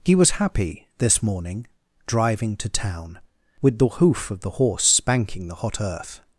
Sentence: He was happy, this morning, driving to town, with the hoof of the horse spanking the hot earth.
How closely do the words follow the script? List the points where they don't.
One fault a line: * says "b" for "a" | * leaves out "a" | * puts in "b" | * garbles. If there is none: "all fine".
all fine